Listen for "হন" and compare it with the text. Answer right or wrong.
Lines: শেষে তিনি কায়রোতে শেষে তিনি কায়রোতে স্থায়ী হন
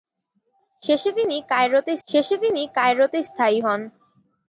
right